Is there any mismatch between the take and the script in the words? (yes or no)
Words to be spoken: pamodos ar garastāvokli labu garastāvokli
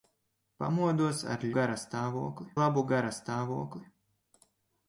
no